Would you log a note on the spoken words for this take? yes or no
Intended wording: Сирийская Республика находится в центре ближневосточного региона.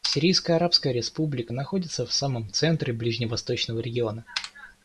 yes